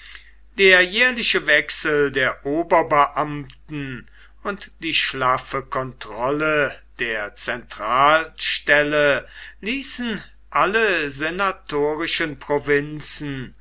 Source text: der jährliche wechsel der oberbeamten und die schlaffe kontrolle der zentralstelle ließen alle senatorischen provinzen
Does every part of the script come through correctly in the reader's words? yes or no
yes